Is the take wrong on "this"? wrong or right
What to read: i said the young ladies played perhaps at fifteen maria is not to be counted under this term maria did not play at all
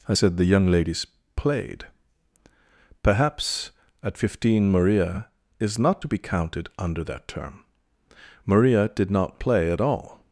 wrong